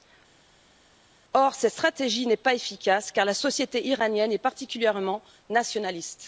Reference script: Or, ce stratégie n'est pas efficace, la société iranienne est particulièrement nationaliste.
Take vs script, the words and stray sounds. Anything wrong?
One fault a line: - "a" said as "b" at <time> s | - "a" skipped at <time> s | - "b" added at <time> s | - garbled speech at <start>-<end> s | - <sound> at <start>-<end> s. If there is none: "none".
- "ce" said as "cette" at 1.5 s
- "car" added at 3.1 s